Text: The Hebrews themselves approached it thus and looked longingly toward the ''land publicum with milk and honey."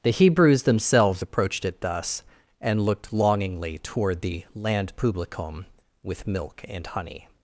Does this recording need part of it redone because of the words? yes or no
no